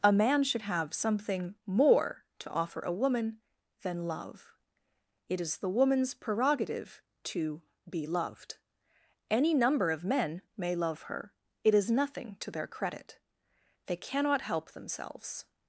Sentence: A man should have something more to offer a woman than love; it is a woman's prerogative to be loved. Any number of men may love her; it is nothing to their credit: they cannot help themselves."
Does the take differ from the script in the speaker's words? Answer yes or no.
yes